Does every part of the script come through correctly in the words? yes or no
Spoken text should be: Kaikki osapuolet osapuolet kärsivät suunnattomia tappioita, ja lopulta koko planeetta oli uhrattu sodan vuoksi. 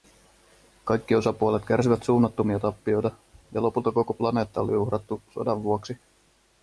no